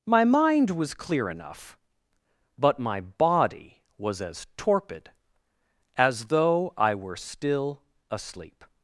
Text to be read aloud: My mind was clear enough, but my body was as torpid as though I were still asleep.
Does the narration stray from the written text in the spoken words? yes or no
no